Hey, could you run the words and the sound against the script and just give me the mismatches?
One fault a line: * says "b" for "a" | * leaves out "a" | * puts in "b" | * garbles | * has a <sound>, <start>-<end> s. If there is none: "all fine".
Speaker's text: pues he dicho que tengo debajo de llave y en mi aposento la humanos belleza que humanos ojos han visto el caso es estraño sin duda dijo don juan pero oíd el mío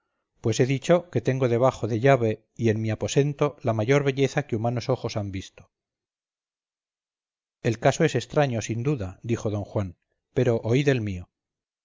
* says "mayor" for "humanos"